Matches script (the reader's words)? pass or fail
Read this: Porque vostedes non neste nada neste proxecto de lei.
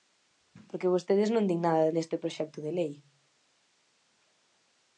fail